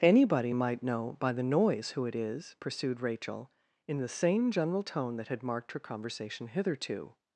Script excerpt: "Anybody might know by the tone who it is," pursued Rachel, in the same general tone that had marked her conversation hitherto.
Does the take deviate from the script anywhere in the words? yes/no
yes